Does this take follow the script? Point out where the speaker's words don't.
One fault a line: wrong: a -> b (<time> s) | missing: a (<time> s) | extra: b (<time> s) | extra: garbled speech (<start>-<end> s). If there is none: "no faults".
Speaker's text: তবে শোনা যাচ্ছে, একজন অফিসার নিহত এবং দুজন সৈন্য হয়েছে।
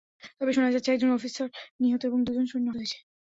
no faults